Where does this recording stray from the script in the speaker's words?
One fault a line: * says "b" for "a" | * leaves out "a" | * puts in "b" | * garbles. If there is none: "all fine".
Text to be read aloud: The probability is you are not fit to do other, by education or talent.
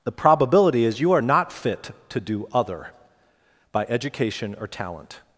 all fine